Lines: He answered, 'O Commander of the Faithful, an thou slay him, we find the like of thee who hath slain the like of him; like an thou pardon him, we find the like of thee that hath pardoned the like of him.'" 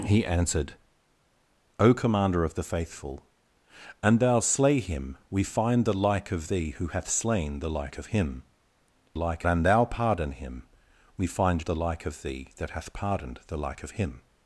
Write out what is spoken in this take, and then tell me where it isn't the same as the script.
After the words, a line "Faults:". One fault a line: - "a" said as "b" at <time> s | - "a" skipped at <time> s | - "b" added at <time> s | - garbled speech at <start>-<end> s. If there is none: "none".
He answered, 'O Commander of the Faithful, an thou slay him, we find the like of thee who hath slain the like of him; like an thou pardon him, we find the like of thee that hath pardoned the like of him.'"
Faults:
none